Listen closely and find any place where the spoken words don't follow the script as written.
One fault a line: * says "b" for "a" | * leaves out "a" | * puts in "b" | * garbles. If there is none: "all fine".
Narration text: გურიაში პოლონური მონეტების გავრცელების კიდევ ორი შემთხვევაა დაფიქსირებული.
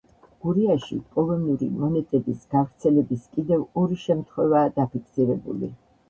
all fine